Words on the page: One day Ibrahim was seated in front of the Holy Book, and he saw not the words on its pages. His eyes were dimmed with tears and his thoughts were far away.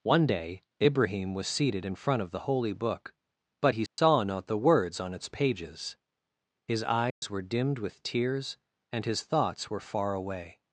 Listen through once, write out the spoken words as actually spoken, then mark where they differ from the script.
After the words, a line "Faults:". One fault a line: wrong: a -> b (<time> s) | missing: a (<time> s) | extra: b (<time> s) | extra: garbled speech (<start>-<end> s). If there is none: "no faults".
One day Ibrahim was seated in front of the Holy Book, but he saw not the words on its pages. His eyes were dimmed with tears and his thoughts were far away.
Faults:
wrong: and -> but (3.6 s)